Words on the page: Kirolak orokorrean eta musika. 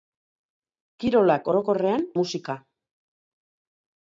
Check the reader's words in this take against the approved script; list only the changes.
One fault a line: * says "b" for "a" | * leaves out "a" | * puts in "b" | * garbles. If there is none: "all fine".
* leaves out "eta"